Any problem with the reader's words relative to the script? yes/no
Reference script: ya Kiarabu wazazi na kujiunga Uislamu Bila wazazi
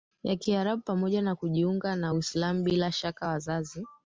yes